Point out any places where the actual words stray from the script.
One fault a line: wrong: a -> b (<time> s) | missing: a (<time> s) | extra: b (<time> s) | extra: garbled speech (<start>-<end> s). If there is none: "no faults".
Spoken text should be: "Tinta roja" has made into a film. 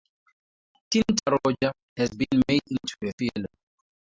extra: been (2.1 s)